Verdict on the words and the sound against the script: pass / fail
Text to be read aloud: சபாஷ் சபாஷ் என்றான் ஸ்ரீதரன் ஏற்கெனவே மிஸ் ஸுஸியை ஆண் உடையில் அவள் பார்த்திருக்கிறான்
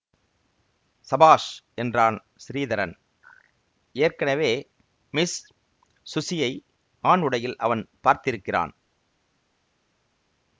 fail